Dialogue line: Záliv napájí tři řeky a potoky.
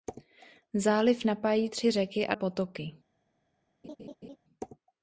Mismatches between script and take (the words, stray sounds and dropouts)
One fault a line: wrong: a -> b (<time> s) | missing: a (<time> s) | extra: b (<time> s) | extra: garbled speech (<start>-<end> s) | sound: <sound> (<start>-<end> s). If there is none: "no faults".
sound: laugh (3.8-4.4 s)